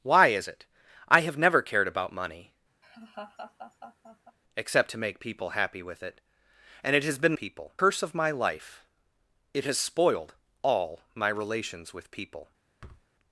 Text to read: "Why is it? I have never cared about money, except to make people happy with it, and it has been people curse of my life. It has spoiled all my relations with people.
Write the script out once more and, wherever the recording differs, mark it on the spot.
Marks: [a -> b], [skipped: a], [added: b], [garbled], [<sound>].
"Why is it? I have never cared about money, [laugh] except to make people happy with it, and it has been people curse of my life. It has spoiled all my relations with people. [thud]